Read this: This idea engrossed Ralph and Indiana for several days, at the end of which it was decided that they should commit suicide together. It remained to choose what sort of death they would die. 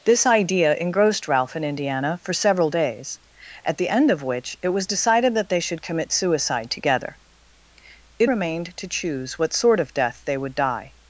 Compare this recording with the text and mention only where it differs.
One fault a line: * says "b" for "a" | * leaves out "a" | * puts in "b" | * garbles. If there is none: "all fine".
all fine